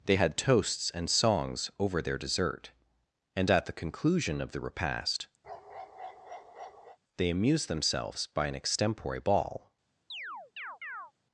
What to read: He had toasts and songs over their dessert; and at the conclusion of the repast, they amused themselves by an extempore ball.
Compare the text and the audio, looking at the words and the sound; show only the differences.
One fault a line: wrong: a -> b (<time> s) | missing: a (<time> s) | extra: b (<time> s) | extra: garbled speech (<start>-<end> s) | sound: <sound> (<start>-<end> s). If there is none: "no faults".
wrong: He -> They (0.1 s)
sound: bark (5.4-7.0 s)
sound: chirp (10.1-11.1 s)